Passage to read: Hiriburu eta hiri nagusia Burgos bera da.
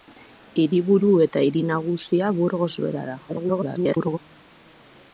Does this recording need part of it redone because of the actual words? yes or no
yes